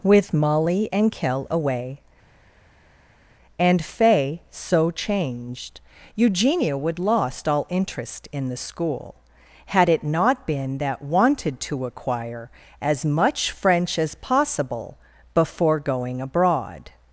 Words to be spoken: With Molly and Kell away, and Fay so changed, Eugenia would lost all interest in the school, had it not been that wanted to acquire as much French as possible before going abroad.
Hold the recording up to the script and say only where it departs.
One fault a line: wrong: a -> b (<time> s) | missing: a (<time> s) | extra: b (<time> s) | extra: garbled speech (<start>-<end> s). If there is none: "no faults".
no faults